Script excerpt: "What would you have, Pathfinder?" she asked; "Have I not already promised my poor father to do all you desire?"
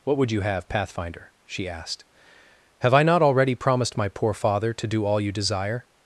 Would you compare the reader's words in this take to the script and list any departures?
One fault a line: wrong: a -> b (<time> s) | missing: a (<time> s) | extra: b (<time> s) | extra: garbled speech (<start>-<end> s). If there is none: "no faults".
no faults